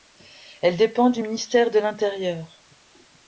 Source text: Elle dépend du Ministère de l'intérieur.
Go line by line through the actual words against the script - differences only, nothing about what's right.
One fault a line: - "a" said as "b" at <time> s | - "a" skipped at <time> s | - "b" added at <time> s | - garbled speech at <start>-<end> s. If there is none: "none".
none